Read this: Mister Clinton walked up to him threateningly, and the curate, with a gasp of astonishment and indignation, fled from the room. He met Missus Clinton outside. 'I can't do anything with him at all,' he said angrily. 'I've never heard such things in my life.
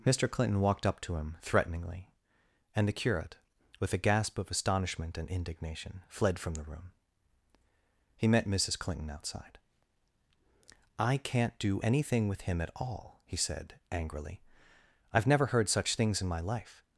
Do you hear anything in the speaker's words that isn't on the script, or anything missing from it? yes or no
no